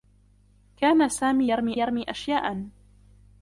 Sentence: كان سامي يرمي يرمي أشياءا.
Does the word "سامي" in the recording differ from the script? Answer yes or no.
no